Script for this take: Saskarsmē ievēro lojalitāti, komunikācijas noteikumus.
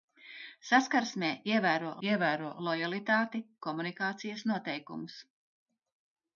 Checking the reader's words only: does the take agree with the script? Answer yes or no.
no